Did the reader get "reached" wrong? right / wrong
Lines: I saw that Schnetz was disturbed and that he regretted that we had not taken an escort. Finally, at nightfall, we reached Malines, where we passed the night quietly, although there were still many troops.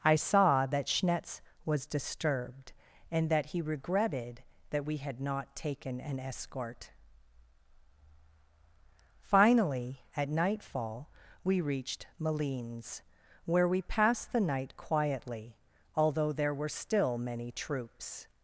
right